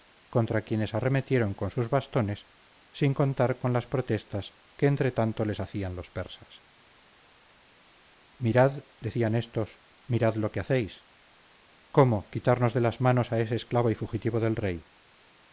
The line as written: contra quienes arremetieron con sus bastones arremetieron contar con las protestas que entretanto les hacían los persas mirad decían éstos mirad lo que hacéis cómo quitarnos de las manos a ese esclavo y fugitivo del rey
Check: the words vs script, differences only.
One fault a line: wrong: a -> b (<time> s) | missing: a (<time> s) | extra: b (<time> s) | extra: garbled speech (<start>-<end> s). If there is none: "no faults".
wrong: arremetieron -> sin (2.9 s)